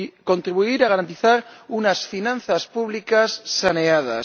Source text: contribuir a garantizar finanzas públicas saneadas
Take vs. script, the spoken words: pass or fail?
fail